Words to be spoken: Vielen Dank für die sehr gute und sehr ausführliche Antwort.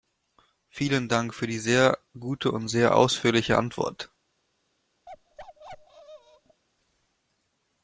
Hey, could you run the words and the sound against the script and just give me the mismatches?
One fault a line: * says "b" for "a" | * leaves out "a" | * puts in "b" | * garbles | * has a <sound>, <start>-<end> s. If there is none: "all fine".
* has a bark, 5.1-6.6 s